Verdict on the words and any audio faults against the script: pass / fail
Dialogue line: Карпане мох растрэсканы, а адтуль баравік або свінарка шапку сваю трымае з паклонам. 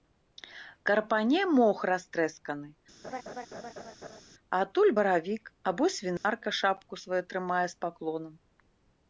fail